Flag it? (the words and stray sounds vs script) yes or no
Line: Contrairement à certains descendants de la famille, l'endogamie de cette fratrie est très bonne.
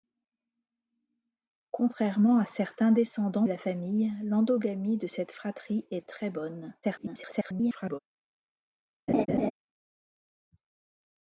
yes